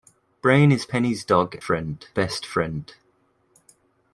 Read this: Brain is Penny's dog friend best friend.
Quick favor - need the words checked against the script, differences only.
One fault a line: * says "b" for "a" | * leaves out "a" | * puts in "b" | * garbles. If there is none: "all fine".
all fine